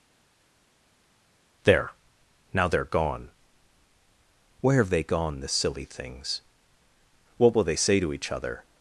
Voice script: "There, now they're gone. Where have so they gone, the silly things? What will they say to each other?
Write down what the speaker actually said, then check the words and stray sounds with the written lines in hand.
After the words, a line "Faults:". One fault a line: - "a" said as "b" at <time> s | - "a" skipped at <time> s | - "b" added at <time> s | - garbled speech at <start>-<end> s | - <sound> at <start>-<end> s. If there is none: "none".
"There, now they're gone. Where have they gone, the silly things? What will they say to each other?
Faults:
- "so" skipped at 4.9 s